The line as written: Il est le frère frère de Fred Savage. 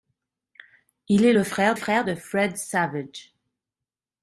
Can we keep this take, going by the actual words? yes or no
yes